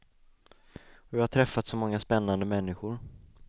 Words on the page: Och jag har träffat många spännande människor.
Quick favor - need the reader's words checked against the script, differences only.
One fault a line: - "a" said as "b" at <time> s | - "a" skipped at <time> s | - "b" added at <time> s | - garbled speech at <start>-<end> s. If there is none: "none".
- "så" added at 1.7 s